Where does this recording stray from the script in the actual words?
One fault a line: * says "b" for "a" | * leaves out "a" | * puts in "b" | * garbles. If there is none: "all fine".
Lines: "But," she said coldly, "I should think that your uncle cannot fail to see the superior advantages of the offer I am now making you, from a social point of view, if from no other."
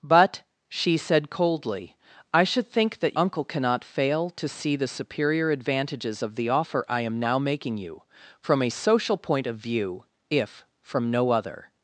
* leaves out "your"